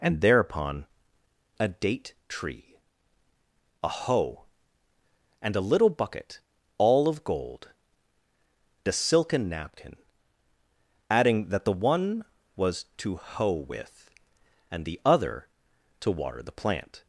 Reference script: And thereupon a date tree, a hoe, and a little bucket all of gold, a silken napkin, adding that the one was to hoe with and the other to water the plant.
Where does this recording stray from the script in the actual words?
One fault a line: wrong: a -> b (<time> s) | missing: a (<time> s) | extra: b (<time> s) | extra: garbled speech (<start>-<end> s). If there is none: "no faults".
no faults